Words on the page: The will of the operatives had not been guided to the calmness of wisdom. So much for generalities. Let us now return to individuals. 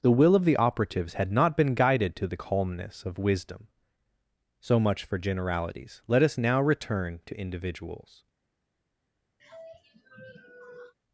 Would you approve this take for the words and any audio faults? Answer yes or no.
no